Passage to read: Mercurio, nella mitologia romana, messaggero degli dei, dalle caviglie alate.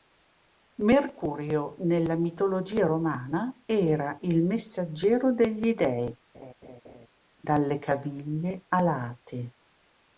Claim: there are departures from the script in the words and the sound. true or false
true